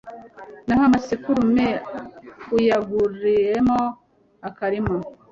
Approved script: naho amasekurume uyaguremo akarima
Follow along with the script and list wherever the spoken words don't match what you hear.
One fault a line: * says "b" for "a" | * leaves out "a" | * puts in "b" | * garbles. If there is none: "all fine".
all fine